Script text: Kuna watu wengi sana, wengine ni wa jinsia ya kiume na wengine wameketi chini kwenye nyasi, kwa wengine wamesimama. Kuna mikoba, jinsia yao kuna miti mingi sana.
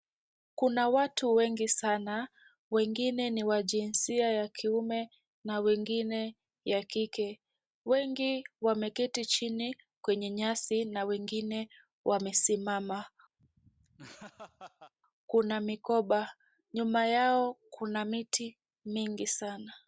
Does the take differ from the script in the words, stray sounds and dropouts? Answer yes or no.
yes